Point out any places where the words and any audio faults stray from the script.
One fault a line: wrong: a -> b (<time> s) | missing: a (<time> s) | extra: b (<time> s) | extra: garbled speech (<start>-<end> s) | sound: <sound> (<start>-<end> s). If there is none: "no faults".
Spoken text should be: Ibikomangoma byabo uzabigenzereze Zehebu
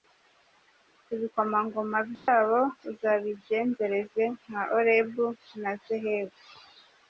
sound: dropout (2.2-2.3 s)
extra: nka Orebu na (4.4 s)